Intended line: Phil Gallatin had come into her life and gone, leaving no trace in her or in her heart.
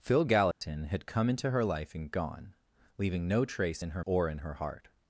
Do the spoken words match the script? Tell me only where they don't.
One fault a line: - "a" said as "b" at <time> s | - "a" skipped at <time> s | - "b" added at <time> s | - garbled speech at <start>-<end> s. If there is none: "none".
none